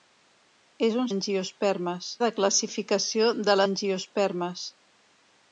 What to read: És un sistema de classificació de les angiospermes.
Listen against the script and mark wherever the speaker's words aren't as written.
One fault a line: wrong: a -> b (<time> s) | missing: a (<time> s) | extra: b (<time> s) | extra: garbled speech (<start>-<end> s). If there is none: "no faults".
wrong: sistema -> angiospermes (1.2 s)
missing: les (3.6 s)